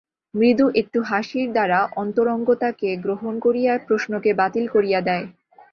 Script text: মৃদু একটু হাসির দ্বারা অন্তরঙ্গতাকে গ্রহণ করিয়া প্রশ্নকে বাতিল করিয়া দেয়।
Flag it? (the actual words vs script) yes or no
no